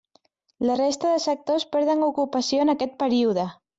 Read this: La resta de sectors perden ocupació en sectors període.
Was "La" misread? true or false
false